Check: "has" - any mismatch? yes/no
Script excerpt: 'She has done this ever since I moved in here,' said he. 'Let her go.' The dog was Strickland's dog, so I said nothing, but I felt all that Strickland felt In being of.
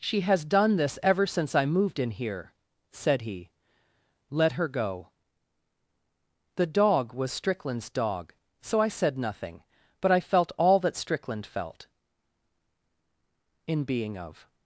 no